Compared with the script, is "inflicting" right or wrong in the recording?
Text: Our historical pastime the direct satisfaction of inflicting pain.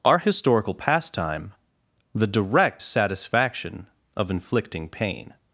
right